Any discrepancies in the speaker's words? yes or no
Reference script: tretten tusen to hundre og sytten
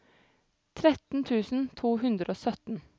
no